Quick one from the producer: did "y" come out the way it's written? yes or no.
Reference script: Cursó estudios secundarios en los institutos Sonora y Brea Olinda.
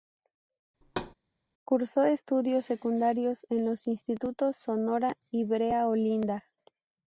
yes